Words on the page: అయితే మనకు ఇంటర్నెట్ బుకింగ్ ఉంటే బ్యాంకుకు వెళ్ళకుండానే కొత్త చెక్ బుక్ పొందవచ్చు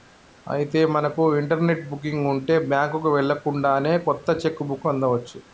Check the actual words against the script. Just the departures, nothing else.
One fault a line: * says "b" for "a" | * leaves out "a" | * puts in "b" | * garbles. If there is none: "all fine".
all fine